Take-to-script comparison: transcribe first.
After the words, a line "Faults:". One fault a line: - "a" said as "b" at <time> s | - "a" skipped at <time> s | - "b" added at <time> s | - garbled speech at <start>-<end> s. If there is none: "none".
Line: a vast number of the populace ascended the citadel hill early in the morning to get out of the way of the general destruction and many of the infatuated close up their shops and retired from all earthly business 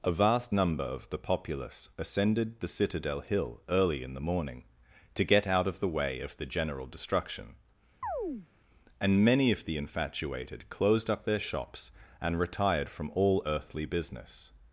a vast number of the populace ascended the citadel hill early in the morning to get out of the way of the general destruction and many of the infatuated closed up their shops and retired from all earthly business
Faults:
- "close" said as "closed" at 10.7 s